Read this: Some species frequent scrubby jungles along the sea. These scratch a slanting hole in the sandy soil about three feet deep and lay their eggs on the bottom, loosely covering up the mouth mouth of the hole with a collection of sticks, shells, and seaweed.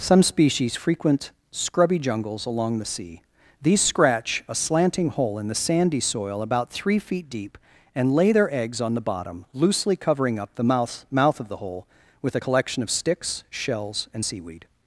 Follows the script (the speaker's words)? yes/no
yes